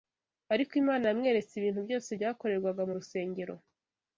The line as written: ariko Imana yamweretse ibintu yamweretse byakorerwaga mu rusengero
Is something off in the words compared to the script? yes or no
yes